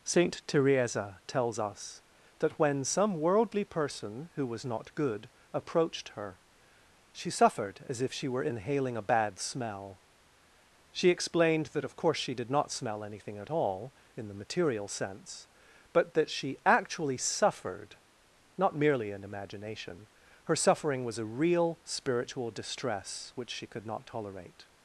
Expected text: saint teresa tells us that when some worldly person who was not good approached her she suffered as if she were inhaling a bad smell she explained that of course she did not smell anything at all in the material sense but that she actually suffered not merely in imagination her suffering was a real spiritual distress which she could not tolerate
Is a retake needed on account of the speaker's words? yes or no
no